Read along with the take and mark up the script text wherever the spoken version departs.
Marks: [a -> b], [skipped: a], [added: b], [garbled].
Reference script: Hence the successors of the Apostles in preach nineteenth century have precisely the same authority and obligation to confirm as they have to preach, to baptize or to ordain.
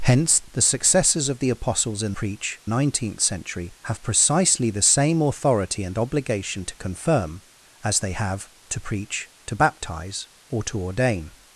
Hence the successors of the Apostles in preach nineteenth century have precisely the same authority and obligation to confirm as they have to preach, to baptize or to ordain.